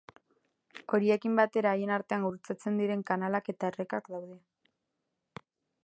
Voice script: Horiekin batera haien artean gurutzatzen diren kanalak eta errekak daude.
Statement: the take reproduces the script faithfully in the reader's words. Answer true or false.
true